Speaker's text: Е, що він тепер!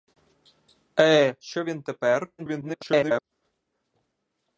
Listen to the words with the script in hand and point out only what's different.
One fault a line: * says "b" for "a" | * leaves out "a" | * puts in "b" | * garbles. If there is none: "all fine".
* garbles